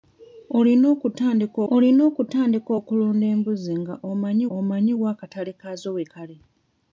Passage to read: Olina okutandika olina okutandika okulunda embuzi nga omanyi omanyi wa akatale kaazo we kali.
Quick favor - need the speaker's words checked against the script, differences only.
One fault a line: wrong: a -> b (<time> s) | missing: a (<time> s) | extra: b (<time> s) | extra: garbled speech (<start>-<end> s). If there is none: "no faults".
no faults